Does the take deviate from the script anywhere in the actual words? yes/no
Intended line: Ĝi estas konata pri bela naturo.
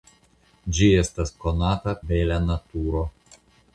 yes